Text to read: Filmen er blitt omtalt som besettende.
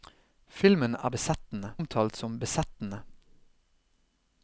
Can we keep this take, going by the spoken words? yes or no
no